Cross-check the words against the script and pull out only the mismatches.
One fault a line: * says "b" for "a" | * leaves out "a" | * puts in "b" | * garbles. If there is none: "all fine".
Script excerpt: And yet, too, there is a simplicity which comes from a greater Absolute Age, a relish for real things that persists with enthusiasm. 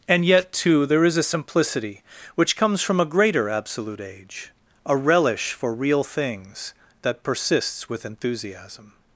all fine